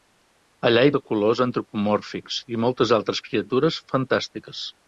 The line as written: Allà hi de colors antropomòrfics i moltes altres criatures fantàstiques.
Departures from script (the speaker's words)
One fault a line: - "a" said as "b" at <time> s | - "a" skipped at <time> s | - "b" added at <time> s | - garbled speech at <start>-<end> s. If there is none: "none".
none